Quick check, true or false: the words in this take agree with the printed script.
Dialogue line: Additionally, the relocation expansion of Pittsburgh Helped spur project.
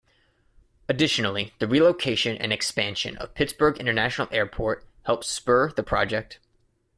false